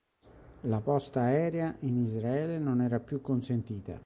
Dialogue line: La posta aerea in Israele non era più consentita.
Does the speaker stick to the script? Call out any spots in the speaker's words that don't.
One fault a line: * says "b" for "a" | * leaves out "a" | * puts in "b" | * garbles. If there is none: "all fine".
all fine